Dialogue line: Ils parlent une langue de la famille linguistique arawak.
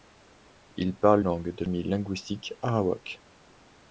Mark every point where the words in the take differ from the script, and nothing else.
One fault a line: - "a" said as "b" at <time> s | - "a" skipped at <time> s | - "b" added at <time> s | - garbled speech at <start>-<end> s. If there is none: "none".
- "une" skipped at 1.2 s
- "la" skipped at 1.7 s